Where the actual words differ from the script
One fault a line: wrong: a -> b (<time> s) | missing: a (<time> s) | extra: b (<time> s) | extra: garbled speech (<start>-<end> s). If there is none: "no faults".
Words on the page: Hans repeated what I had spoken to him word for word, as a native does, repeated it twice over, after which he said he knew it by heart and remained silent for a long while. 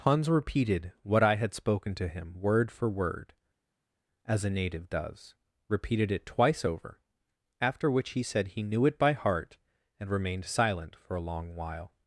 no faults